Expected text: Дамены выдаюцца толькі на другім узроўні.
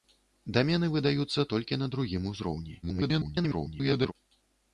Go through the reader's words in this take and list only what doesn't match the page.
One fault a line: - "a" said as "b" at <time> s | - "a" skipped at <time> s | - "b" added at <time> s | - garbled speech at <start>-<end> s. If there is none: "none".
- garbled speech at 2.8-4.1 s